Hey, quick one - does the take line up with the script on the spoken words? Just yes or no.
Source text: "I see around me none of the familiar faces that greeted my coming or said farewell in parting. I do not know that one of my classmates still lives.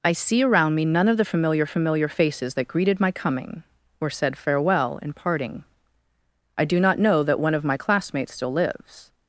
no